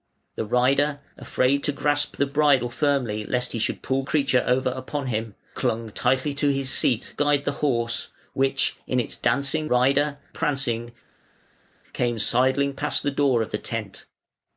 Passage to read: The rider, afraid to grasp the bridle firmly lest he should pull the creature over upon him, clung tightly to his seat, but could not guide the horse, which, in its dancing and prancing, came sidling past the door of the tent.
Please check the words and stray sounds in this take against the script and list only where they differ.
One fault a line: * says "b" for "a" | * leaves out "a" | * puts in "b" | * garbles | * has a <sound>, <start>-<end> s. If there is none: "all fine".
* leaves out "the"
* leaves out "but could not"
* says "rider" for "and"